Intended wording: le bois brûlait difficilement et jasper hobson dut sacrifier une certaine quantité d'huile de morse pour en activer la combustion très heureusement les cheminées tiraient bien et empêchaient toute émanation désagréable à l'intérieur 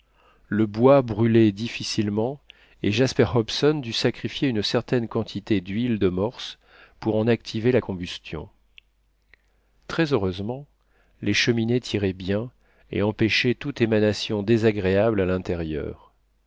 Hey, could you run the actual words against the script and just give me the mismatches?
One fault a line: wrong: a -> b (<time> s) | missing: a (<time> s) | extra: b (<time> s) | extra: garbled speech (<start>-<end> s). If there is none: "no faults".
no faults